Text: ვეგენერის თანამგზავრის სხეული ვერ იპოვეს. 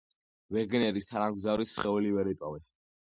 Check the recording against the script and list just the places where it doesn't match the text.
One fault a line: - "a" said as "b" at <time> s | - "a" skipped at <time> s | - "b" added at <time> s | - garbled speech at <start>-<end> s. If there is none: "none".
none